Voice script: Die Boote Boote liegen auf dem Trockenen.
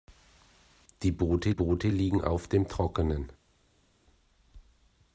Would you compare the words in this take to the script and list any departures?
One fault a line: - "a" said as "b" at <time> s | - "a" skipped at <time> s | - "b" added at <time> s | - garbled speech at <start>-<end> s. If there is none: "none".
none